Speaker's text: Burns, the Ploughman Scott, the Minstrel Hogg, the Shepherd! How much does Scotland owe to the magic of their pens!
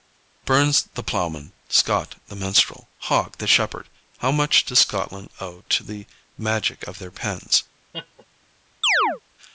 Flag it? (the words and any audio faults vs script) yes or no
yes